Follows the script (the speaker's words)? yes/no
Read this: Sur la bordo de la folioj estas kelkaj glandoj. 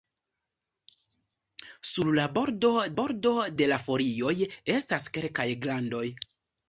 no